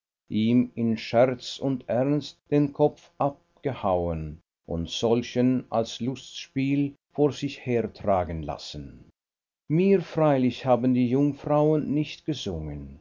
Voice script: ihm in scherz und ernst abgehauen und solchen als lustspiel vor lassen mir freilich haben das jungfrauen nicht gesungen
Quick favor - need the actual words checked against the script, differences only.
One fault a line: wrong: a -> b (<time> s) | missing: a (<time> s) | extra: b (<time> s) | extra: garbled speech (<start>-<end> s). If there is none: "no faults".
extra: den kopf (2.5 s)
extra: sich hertragen (7.3 s)
wrong: das -> die (10.9 s)